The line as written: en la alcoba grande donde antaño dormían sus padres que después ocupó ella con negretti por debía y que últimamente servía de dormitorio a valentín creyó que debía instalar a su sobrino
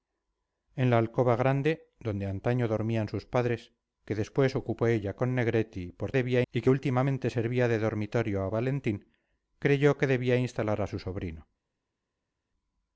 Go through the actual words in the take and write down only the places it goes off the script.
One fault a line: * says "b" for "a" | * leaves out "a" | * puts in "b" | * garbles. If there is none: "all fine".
all fine